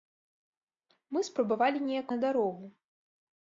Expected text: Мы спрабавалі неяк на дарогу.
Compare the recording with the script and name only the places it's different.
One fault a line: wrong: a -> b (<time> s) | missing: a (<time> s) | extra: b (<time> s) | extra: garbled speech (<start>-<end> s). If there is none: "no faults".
no faults